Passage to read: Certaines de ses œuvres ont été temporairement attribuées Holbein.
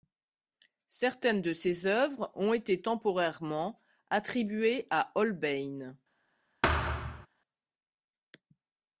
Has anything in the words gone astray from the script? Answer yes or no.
yes